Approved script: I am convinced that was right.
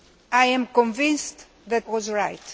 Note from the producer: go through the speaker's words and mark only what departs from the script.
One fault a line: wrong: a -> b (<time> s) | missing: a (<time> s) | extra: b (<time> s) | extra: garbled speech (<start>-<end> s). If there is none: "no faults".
no faults